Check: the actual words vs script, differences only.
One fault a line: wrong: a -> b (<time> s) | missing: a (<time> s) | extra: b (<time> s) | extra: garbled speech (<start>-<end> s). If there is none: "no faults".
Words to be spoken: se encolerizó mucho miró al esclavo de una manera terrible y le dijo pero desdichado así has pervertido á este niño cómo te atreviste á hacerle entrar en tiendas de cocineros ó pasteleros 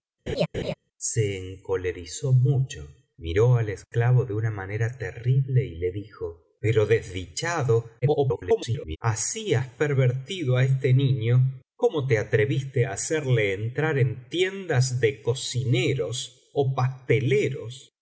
extra: garbled speech (8.0-9.0 s)